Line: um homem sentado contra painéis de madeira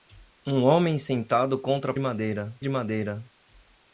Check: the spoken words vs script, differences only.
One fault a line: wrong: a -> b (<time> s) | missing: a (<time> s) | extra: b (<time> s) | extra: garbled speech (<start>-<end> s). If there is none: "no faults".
wrong: painéis -> madeira (2.0 s)